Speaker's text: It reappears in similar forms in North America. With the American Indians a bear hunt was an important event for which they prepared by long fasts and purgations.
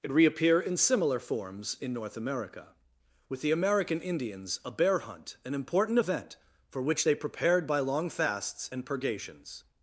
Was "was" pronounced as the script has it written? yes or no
no